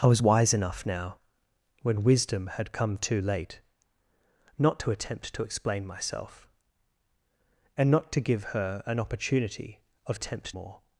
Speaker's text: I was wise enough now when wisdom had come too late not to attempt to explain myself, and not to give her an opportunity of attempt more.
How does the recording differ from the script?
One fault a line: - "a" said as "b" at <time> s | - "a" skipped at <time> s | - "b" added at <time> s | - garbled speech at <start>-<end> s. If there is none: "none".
none